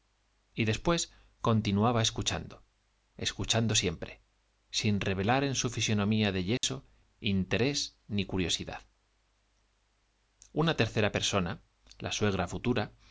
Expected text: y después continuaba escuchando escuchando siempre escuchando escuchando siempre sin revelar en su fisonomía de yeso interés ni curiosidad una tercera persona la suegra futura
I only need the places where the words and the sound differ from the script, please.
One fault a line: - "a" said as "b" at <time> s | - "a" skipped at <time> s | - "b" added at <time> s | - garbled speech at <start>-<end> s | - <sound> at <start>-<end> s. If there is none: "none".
- "escuchando escuchando siempre" skipped at 4.2 s
- dropout at 6.6-6.6 s